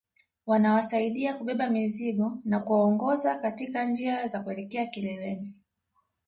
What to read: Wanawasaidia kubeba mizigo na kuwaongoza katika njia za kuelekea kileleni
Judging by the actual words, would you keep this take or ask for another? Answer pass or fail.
pass